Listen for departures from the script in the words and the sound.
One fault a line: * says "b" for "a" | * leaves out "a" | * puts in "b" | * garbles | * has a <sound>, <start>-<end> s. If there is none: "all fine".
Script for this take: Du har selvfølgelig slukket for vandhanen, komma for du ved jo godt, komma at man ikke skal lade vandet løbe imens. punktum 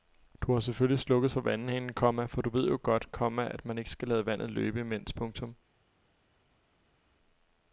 all fine